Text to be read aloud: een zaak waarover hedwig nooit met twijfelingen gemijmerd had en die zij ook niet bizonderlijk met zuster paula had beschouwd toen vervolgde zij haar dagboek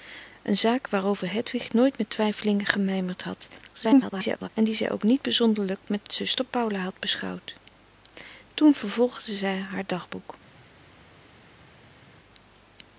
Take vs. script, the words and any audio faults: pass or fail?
fail